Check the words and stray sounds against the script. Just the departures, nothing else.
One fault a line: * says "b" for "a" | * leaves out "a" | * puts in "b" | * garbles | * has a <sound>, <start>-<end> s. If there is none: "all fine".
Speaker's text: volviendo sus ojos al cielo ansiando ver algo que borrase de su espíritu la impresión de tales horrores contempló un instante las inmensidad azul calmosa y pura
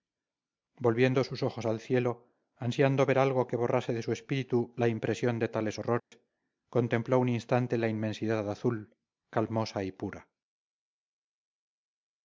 * has a dropout, 6.0-6.1 s
* says "la" for "las"